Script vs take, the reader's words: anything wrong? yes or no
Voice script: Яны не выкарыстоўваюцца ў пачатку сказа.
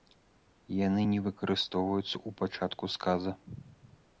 no